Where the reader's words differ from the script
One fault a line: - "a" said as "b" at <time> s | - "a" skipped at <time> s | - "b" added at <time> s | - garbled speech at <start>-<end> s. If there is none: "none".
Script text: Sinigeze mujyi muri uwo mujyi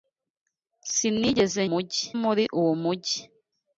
none